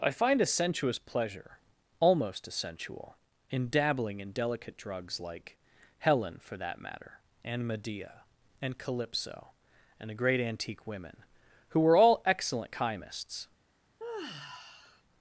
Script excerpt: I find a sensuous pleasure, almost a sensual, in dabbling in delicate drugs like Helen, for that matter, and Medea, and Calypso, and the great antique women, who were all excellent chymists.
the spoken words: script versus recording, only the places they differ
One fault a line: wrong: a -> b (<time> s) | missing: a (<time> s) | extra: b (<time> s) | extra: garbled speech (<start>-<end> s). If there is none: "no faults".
no faults